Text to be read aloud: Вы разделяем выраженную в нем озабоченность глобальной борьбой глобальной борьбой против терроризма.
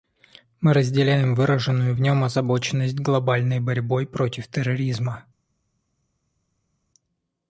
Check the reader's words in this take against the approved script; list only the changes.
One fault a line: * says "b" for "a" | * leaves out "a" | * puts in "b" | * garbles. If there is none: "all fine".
* says "Мы" for "Вы"
* leaves out "глобальной борьбой"